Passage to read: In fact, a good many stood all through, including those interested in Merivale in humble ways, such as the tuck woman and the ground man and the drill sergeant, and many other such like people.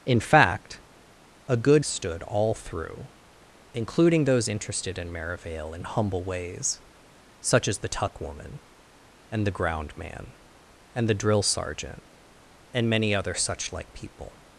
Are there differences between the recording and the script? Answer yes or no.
yes